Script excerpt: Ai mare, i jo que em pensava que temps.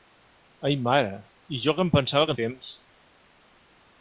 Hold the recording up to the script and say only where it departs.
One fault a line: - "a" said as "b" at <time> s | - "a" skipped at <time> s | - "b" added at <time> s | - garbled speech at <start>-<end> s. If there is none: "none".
none